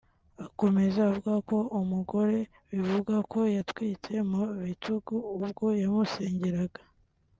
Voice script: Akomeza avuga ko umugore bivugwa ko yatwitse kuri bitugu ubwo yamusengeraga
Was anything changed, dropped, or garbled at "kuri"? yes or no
yes